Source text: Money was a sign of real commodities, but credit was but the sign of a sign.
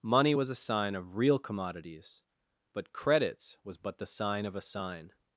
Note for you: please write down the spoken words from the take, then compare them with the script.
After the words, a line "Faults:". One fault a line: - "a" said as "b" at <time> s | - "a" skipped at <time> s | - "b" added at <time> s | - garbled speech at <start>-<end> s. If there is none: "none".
Money was a sign of real commodities, but credits was but the sign of a sign.
Faults:
- "credit" said as "credits" at 2.9 s